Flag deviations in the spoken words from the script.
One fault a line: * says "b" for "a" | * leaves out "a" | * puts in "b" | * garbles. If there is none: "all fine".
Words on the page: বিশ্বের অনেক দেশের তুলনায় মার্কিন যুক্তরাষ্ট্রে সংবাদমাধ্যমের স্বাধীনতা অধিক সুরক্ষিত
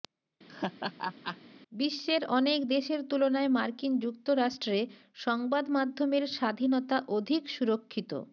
all fine